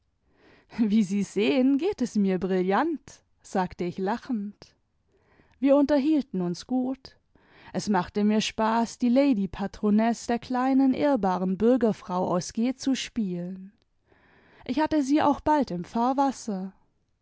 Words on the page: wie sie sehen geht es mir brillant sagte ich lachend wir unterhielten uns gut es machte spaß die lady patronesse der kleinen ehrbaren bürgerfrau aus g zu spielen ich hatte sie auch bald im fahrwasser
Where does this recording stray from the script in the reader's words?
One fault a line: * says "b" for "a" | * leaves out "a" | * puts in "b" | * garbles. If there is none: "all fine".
* puts in "mir"